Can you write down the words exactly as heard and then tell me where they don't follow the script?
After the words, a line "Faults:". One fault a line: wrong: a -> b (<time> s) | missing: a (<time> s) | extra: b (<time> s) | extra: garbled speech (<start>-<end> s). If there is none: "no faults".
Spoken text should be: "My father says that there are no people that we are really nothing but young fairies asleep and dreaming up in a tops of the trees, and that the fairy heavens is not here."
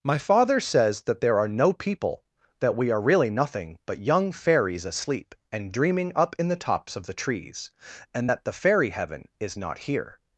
"My father says that there are no people that we are really nothing but young fairies asleep and dreaming up in the tops of the trees, and that the fairy heaven is not here."
Faults:
wrong: a -> the (6.5 s)
wrong: heavens -> heaven (8.9 s)